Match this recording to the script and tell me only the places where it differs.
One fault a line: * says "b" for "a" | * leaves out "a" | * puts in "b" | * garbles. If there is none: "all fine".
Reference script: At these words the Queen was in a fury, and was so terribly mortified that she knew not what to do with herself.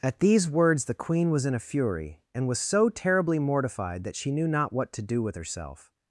all fine